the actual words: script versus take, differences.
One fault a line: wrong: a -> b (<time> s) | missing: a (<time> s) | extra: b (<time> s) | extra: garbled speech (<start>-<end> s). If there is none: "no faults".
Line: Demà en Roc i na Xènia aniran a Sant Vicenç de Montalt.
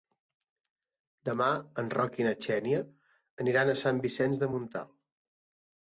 no faults